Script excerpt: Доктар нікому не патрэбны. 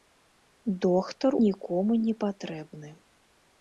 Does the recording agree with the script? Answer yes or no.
yes